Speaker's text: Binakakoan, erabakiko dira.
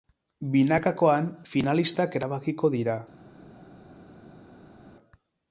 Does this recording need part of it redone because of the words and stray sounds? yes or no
yes